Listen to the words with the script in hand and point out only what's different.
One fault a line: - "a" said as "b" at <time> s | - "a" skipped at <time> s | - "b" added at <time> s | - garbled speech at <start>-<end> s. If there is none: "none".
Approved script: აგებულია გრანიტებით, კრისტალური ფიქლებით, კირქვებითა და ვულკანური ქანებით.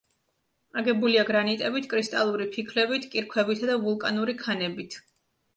none